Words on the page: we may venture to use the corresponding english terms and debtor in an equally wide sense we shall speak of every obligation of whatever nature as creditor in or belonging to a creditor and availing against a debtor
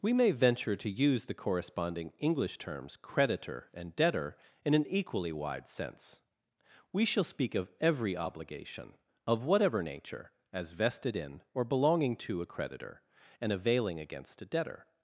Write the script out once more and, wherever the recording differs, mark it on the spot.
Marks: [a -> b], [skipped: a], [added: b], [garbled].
we may venture to use the corresponding english terms [added: creditor] and debtor in an equally wide sense we shall speak of every obligation of whatever nature as [creditor -> vested] in or belonging to a creditor and availing against a debtor